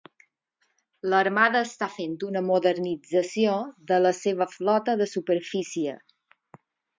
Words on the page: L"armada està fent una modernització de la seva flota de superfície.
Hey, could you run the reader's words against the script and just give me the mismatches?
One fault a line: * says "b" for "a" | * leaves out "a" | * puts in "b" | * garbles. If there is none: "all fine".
all fine